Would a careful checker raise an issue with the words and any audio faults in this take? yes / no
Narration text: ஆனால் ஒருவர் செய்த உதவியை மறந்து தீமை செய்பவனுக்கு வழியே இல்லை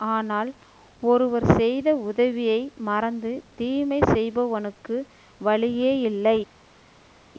no